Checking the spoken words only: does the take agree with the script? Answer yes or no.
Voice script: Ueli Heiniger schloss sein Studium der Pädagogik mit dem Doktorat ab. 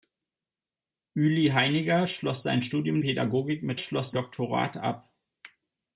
no